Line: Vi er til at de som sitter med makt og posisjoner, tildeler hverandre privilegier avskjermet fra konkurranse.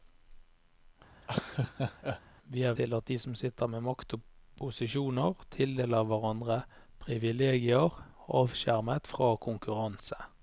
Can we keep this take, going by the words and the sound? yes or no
no